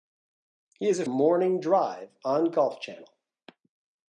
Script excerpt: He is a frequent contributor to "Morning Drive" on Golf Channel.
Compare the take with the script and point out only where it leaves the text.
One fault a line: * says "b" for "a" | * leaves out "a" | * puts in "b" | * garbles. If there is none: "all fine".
* leaves out "frequent contributor to"